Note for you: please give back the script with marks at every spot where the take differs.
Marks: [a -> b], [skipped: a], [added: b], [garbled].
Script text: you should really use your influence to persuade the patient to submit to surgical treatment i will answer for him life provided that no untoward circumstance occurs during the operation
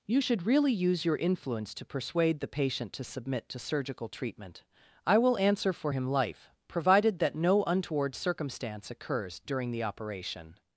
you should really use your influence to persuade the patient to submit to surgical treatment i will answer for him life provided that no untoward circumstance occurs during the operation